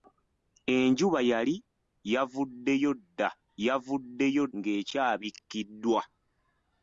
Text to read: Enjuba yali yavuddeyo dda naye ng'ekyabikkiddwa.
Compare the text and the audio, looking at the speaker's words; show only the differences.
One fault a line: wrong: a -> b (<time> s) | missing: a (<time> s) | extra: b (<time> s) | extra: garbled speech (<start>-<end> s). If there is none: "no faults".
wrong: naye -> yavuddeyo (3.7 s)